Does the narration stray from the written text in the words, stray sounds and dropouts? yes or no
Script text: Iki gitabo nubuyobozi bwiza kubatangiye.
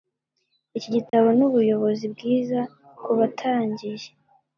yes